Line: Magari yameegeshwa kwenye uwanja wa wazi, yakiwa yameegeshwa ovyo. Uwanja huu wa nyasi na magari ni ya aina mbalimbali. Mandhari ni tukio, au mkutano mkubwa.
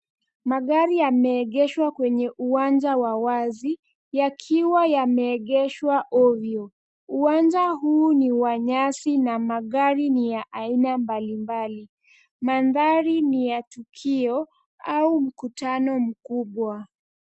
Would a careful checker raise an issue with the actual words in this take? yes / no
yes